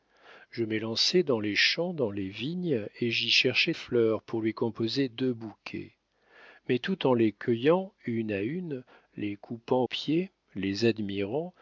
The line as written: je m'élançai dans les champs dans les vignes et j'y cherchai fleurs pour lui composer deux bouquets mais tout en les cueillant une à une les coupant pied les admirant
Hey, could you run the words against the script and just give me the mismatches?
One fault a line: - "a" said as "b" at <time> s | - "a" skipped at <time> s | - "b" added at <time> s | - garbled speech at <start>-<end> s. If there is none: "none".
none